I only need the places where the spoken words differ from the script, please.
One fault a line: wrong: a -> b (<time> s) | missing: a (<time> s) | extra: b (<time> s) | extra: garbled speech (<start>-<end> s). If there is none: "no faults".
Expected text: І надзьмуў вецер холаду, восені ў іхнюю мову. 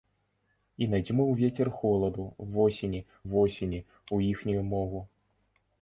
extra: восені (3.3 s)